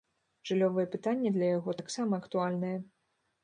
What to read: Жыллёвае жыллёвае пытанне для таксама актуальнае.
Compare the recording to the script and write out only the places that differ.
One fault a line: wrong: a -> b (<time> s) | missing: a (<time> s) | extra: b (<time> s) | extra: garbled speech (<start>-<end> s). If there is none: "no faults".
missing: жыллёвае (0.8 s)
extra: яго (1.6 s)